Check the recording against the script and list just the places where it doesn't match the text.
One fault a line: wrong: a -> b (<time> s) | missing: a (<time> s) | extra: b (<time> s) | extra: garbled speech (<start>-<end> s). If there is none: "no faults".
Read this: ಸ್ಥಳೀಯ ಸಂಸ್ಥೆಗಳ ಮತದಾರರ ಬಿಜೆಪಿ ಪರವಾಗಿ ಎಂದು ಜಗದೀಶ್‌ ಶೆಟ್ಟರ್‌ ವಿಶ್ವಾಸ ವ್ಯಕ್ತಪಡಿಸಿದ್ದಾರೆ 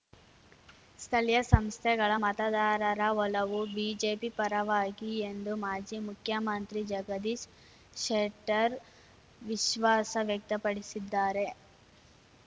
extra: ಒಲವು (3.2 s)
extra: ಮಾಜಿ ಮುಖ್ಯಮಂತ್ರಿ (5.7 s)